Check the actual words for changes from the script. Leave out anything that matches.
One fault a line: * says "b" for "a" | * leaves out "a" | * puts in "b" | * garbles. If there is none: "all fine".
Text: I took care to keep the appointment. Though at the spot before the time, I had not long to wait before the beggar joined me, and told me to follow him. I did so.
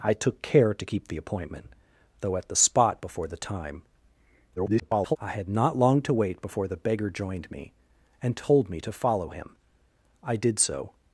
* garbles